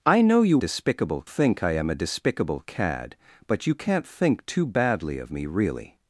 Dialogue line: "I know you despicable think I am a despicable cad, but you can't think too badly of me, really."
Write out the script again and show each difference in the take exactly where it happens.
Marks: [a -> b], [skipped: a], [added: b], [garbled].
"I know you despicable think I am a despicable cad, but you can't think too badly of me, really."